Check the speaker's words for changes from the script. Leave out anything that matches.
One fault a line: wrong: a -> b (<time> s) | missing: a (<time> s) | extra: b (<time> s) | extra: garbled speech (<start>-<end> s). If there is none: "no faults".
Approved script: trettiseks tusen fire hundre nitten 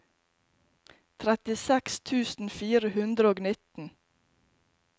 extra: og (3.3 s)